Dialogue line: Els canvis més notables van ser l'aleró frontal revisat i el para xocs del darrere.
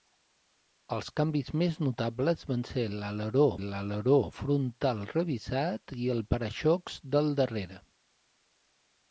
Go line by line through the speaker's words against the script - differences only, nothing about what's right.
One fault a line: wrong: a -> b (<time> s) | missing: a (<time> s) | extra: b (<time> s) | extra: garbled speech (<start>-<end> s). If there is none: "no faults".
extra: l'aleró (3.6 s)